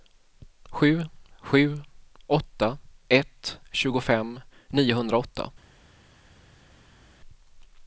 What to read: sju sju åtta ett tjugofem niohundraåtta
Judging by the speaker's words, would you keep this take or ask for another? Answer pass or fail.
pass